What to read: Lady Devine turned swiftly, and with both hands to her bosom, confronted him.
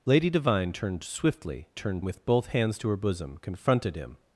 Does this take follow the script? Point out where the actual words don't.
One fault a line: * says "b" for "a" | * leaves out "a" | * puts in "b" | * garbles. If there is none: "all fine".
* says "turned" for "and"